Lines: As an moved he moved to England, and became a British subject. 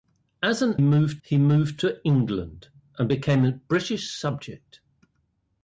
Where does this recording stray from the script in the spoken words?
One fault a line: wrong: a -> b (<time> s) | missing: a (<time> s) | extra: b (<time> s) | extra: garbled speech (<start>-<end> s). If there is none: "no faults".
no faults